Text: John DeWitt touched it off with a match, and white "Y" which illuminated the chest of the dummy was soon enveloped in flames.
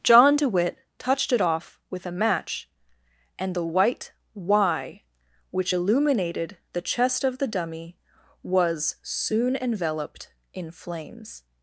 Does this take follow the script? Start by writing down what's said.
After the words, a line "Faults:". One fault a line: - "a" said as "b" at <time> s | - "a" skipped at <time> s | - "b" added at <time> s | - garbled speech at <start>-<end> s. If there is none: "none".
John DeWitt touched it off with a match, and the white "Y" which illuminated the chest of the dummy was soon enveloped in flames.
Faults:
- "the" added at 3.5 s